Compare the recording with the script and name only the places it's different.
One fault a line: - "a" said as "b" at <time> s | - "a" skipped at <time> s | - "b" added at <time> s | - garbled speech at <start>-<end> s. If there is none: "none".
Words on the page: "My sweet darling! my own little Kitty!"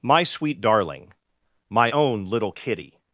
none